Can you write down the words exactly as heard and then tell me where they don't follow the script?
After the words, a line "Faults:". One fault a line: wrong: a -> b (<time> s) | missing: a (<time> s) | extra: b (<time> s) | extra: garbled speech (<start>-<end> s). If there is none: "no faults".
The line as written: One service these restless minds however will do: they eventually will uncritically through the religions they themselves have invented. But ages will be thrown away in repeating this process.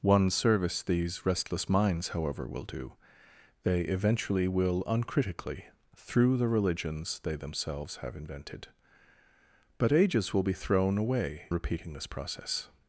One service these restless minds however will do: they eventually will uncritically through the religions they themselves have invented. But ages will be thrown away repeating this process.
Faults:
missing: in (11.5 s)